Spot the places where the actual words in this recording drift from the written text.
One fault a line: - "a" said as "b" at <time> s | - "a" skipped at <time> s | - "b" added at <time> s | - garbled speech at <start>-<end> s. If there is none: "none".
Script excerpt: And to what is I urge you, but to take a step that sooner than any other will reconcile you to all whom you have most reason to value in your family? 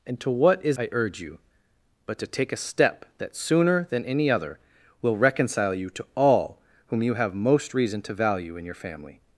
none